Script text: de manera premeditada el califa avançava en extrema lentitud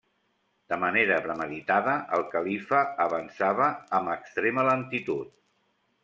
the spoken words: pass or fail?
fail